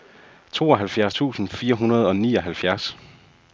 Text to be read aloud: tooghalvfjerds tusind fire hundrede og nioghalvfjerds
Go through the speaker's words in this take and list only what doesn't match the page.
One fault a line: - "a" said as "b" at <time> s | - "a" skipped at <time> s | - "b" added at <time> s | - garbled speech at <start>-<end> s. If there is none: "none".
none